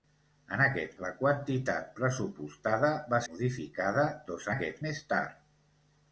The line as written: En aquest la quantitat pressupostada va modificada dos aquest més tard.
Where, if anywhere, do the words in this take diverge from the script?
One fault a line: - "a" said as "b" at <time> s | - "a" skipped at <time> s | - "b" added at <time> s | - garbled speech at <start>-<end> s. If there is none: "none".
none